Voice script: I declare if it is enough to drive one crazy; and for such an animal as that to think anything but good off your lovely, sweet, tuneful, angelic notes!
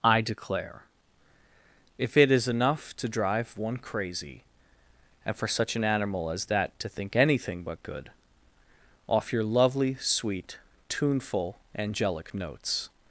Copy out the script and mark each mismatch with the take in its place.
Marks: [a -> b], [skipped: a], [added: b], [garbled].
I declare if it is enough to drive one crazy; and for such an animal as that to think anything but good off your lovely, sweet, tuneful, angelic notes!